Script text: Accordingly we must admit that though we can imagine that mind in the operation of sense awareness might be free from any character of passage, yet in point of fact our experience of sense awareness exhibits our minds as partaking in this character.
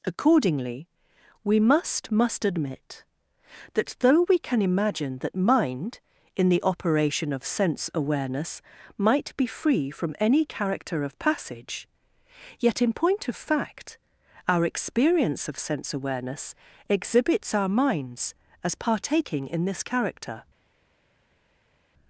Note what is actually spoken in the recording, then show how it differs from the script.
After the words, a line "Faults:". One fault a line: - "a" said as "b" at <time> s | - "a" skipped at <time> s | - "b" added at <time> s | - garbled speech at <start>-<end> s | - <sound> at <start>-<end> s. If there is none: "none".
Accordingly we must must admit that though we can imagine that mind in the operation of sense awareness might be free from any character of passage, yet in point of fact our experience of sense awareness exhibits our minds as partaking in this character.
Faults:
- "must" added at 2.1 s